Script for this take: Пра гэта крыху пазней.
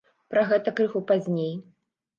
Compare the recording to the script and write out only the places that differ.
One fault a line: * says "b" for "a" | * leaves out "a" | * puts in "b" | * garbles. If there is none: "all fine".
all fine